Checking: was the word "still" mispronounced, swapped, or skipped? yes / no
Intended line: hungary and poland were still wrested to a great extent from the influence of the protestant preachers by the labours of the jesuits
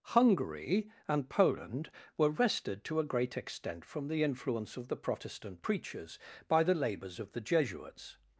yes